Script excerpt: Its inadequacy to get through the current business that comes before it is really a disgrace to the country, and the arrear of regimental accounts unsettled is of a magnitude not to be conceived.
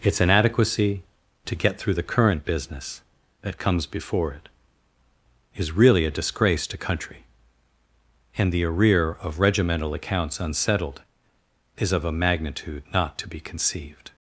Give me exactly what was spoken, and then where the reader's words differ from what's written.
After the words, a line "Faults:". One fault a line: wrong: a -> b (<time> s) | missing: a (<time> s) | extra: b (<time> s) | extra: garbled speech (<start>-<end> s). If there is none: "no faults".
Its inadequacy to get through the current business that comes before it is really a disgrace to country, and the arrear of regimental accounts unsettled is of a magnitude not to be conceived.
Faults:
missing: the (6.8 s)